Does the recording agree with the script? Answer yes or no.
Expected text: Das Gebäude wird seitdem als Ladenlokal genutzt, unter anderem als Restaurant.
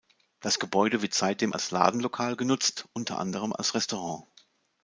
yes